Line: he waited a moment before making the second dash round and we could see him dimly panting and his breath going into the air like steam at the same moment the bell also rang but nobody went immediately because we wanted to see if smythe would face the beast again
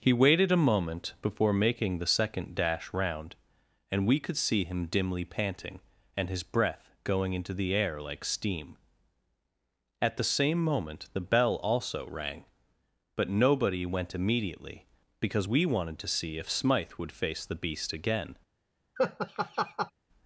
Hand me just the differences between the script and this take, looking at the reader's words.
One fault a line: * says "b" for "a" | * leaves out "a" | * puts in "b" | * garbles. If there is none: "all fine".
all fine